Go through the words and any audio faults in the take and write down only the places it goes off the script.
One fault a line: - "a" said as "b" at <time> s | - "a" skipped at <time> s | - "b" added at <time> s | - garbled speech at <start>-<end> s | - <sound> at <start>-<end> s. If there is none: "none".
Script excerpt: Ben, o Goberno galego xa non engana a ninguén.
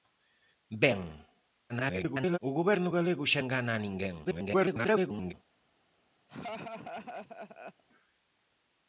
- garbled speech at 1.7-2.4 s
- "non" skipped at 3.4 s
- garbled speech at 4.2-5.3 s
- laugh at 6.3-7.8 s